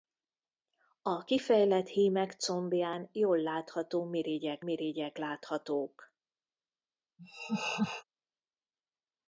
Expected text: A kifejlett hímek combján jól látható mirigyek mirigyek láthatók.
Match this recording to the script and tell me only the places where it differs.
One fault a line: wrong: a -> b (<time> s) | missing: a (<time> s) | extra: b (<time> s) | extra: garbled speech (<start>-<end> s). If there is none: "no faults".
no faults